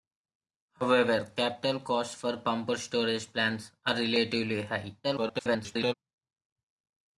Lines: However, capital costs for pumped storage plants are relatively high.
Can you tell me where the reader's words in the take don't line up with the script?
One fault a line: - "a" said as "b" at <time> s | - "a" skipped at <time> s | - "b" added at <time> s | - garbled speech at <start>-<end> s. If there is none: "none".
- garbled speech at 5.0-5.9 s